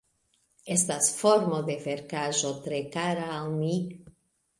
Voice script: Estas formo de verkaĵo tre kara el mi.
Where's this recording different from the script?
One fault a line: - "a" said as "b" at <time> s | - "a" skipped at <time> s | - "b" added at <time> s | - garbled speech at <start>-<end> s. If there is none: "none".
- "el" said as "al" at 3.4 s